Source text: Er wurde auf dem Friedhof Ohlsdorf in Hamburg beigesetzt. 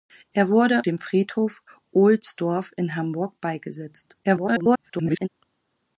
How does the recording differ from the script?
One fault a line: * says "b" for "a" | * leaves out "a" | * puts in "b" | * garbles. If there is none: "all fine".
* leaves out "auf"
* garbles